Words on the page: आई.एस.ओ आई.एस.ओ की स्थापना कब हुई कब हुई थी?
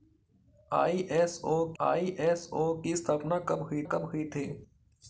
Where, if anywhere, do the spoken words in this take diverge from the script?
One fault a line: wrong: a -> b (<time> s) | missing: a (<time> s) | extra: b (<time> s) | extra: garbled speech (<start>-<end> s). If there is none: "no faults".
no faults